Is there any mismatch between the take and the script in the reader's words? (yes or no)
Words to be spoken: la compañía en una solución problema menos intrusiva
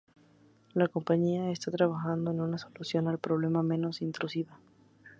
yes